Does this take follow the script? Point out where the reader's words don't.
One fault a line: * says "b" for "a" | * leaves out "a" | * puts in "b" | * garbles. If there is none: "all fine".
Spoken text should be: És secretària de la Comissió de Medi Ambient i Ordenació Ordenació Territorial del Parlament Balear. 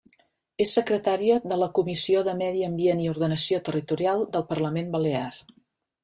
* leaves out "Ordenació"